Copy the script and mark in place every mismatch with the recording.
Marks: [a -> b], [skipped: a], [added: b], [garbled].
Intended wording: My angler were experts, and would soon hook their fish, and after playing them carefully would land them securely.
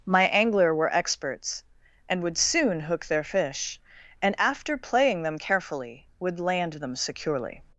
My angler were experts, and would soon hook their fish, and after playing them carefully would land them securely.